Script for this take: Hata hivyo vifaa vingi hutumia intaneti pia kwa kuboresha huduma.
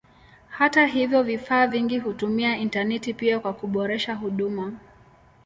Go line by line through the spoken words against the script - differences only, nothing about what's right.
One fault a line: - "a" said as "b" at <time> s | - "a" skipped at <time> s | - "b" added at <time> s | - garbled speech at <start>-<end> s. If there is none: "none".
none